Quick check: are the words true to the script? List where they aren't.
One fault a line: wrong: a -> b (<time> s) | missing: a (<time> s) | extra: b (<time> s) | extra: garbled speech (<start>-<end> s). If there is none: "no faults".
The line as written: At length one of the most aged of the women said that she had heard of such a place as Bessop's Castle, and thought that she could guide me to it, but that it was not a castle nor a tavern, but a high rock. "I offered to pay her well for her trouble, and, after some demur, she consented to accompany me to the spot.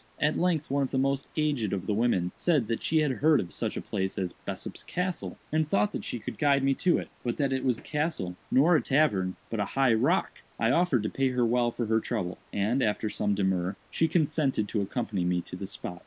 missing: not (7.8 s)